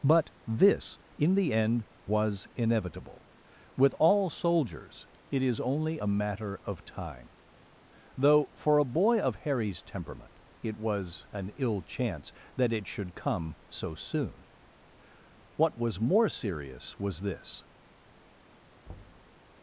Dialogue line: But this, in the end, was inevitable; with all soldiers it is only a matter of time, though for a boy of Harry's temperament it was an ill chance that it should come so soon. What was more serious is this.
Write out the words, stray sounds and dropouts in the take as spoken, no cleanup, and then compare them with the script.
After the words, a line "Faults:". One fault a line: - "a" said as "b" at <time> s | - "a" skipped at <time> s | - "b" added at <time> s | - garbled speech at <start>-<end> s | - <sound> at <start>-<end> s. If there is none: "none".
But this, in the end, was inevitable; with all soldiers it is only a matter of time, though for a boy of Harry's temperament it was an ill chance that it should come so soon. What was more serious was this.
Faults:
- "is" said as "was" at 17.0 s
- thud at 18.9-19.4 s